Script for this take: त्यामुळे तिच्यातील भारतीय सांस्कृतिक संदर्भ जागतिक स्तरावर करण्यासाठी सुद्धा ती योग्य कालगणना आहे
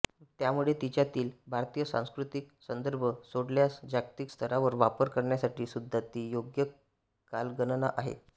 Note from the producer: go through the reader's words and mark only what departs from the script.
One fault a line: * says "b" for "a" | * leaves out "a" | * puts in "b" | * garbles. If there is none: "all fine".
* puts in "सोडल्यास"
* puts in "वापर"